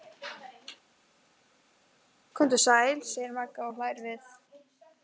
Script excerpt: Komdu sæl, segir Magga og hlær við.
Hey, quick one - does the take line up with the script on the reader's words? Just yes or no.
yes